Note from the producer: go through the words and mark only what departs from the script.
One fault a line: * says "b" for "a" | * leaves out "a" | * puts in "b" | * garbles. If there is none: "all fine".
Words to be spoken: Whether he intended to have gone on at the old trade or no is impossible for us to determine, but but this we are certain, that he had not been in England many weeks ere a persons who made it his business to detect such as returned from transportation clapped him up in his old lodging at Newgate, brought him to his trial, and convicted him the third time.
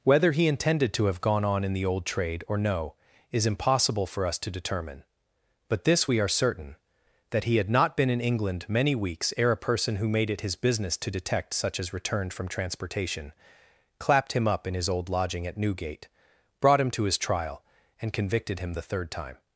* says "in" for "at"
* leaves out "but"
* says "person" for "persons"